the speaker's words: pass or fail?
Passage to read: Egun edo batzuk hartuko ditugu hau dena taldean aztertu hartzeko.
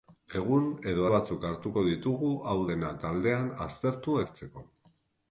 pass